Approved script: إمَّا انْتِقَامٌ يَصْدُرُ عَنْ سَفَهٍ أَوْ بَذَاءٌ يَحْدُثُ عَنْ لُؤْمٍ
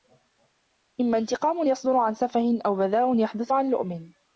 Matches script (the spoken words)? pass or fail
pass